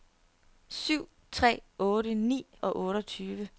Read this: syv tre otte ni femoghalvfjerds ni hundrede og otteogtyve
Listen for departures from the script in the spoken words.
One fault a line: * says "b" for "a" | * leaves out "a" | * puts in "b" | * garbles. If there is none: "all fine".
* leaves out "femoghalvfjerds ni hundrede"